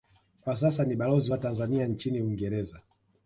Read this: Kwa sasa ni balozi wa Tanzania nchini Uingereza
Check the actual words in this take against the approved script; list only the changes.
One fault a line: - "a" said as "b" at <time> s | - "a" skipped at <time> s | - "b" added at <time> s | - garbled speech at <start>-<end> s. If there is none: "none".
none